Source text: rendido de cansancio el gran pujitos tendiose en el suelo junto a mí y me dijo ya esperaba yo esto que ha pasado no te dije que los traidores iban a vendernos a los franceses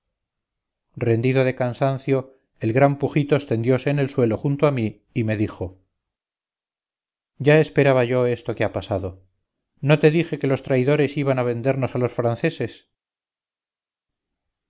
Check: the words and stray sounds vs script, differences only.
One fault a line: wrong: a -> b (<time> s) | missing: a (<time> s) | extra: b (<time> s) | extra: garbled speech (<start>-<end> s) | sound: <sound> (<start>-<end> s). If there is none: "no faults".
no faults